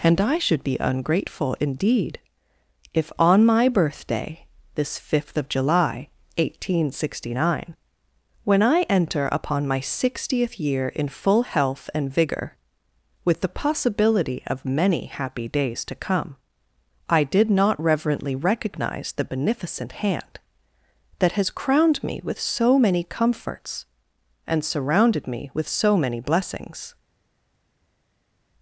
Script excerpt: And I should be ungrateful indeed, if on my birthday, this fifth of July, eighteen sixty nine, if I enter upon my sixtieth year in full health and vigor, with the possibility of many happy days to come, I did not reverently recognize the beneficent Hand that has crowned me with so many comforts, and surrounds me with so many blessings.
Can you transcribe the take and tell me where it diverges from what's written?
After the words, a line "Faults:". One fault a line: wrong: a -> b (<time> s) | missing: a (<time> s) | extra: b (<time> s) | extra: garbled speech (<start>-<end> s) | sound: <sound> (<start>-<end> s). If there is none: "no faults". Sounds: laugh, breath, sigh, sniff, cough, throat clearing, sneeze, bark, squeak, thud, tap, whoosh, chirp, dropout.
And I should be ungrateful indeed, if on my birthday, this fifth of July, eighteen sixty nine, when I enter upon my sixtieth year in full health and vigor, with the possibility of many happy days to come, I did not reverently recognize the beneficent Hand that has crowned me with so many comforts, and surrounded me with so many blessings.
Faults:
wrong: if -> when (8.4 s)
wrong: surrounds -> surrounded (24.6 s)